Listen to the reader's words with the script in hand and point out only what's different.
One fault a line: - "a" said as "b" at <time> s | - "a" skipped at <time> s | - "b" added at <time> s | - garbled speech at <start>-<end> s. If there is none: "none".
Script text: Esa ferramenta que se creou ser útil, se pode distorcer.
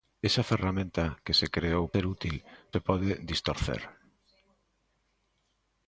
none